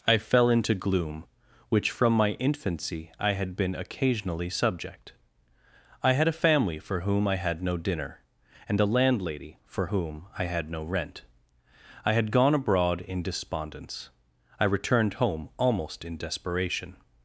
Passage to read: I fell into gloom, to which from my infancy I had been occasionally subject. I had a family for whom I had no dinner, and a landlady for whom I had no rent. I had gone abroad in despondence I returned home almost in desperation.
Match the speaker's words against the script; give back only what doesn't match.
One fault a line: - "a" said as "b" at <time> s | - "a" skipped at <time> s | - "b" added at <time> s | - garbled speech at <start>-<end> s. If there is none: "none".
- "to" skipped at 1.2 s